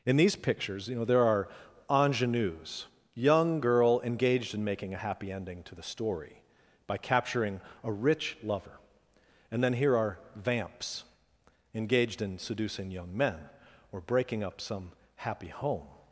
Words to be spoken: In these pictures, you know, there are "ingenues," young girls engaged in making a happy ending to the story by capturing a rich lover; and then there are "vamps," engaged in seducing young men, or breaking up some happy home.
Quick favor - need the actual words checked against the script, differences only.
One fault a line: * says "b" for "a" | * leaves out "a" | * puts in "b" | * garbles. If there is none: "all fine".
* says "girl" for "girls"
* says "here" for "there"